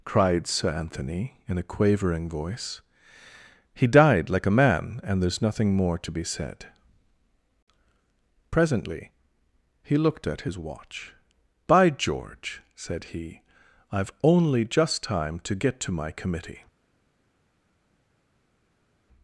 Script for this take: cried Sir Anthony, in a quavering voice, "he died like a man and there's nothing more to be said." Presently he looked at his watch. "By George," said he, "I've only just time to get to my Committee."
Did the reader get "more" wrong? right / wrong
right